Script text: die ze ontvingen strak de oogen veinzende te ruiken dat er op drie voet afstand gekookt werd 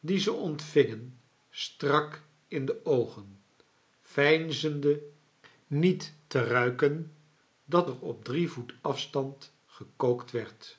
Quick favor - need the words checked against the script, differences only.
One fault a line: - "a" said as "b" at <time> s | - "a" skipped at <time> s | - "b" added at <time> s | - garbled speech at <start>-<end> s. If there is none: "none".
- "in" added at 2.5 s
- "niet" added at 5.7 s